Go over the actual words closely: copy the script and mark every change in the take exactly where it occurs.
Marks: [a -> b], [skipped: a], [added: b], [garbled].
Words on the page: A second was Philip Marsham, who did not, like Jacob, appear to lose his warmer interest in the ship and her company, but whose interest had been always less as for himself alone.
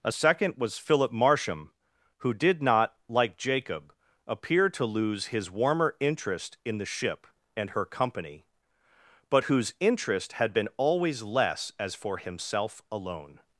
A second was Philip Marsham, who did not, like Jacob, appear to lose his warmer interest in the ship and her company, but whose interest had been always less as for himself alone.